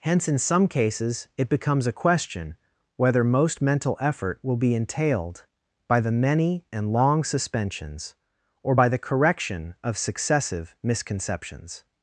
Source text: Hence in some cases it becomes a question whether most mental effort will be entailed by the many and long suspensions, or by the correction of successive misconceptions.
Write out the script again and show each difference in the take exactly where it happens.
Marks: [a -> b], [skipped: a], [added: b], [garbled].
Hence in some cases it becomes a question whether most mental effort will be entailed by the many and long suspensions, or by the correction of successive misconceptions.